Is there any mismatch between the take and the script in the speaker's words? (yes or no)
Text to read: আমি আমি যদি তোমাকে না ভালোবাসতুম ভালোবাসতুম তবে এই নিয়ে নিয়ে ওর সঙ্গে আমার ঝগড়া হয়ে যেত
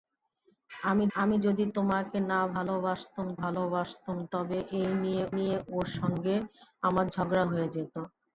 no